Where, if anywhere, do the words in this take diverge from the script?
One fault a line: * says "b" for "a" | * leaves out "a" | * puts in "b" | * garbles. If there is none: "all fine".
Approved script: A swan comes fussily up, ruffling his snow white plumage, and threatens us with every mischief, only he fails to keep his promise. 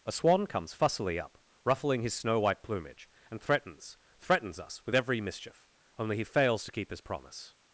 * puts in "threatens"